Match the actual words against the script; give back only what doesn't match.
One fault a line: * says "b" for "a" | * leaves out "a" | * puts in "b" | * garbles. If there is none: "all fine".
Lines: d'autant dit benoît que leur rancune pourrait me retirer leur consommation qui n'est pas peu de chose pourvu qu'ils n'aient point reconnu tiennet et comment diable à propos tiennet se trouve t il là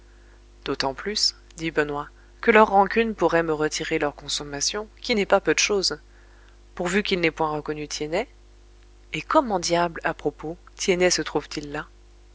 * puts in "plus"